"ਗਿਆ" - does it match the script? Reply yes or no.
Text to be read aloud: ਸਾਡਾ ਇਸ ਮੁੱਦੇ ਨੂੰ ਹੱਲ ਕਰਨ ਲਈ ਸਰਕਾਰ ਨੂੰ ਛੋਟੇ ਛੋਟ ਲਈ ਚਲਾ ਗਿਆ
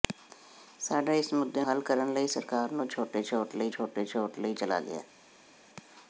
yes